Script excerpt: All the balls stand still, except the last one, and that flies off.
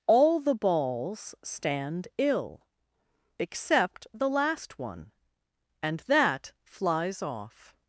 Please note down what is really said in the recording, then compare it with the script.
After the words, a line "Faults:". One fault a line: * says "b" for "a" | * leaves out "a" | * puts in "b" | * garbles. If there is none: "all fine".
All the balls stand ill, except the last one, and that flies off.
Faults:
* says "ill" for "still"